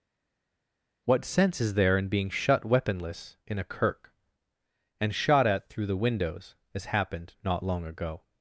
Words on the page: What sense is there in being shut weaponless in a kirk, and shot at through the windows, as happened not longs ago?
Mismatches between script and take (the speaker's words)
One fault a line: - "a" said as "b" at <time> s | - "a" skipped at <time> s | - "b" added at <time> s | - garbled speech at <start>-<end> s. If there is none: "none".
- "longs" said as "long" at 7.6 s